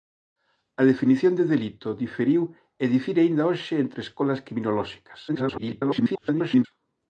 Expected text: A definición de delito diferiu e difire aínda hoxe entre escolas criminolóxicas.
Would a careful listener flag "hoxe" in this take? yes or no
no